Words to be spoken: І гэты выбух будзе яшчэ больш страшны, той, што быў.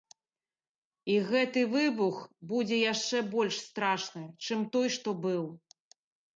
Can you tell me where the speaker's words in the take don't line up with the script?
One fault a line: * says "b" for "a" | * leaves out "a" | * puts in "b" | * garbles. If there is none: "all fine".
* puts in "чым"